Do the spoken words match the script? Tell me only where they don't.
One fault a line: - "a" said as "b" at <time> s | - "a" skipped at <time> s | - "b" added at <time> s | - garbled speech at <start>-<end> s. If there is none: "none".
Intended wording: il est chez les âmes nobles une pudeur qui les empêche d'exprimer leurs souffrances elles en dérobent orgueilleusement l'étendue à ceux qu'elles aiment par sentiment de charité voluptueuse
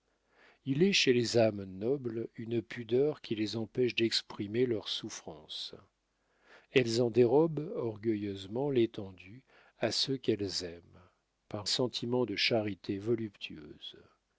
none